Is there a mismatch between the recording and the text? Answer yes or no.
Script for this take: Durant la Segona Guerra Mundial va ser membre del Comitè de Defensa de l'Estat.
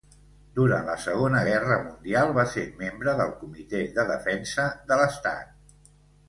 no